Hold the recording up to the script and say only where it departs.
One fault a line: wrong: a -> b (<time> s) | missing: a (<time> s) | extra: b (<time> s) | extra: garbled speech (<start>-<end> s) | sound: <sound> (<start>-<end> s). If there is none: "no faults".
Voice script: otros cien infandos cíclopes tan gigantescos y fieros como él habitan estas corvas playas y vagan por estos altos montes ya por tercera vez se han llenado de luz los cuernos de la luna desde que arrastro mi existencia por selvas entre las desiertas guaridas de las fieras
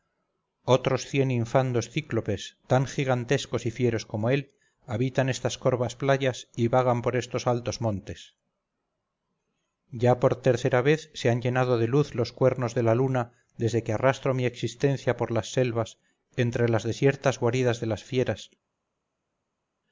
extra: las (15.3 s)